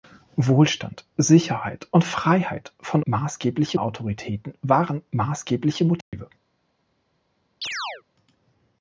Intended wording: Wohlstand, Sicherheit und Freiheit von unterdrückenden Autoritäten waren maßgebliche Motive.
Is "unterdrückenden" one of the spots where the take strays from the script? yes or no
yes